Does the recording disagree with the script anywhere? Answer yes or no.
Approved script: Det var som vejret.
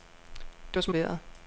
no